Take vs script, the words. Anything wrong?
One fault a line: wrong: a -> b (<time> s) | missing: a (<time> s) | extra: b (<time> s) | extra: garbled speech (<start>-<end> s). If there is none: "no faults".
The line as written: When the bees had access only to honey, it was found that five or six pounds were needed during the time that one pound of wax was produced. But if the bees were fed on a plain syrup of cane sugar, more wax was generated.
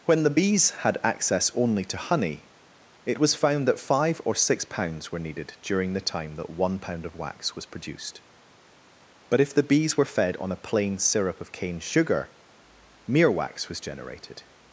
wrong: more -> mere (13.1 s)